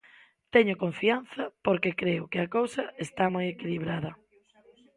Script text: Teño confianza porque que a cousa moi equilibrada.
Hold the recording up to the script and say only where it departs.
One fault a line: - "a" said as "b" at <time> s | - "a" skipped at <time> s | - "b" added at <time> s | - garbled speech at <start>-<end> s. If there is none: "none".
- "creo" added at 2.0 s
- "está" added at 3.0 s